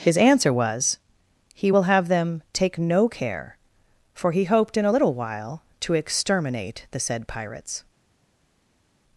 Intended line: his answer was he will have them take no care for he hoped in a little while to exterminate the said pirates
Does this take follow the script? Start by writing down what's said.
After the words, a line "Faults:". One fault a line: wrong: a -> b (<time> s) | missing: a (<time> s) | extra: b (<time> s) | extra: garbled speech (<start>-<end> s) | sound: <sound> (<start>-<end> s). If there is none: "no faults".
his answer was he will have them take no care for he hoped in a little while to exterminate the said pirates
Faults:
no faults